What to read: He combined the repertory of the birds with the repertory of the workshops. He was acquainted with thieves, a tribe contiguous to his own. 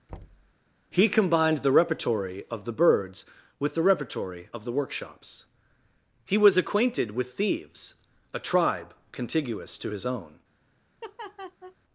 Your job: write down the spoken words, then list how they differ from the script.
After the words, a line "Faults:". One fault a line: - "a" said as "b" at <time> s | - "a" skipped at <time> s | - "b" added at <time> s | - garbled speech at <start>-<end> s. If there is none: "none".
He combined the repertory of the birds with the repertory of the workshops. He was acquainted with thieves, a tribe contiguous to his own.
Faults:
none